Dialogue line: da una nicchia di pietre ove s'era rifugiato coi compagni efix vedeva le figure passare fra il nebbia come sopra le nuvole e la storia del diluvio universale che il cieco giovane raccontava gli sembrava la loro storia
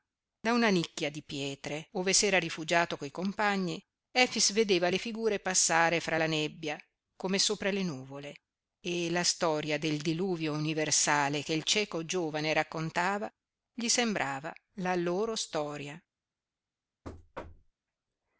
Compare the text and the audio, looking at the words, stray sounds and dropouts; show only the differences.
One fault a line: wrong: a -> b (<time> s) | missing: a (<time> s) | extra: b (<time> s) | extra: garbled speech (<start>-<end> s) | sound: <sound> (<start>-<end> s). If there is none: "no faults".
wrong: il -> la (6.2 s)
sound: thud (17.0-17.7 s)